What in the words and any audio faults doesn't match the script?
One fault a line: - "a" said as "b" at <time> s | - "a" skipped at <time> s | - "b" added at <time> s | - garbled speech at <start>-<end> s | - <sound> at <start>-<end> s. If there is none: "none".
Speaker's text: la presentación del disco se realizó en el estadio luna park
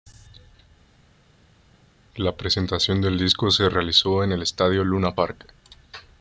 none